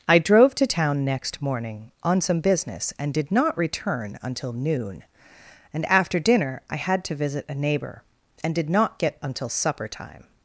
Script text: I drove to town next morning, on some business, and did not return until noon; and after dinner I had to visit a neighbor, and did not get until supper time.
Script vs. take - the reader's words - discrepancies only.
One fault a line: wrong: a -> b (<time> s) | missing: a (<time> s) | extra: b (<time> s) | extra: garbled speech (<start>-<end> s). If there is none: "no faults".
no faults